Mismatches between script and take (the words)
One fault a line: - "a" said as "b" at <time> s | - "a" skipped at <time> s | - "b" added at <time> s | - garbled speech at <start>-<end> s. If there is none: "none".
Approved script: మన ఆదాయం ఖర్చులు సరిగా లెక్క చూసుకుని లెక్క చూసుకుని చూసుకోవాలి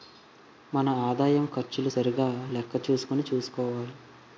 - "లెక్క చూసుకుని" skipped at 3.2 s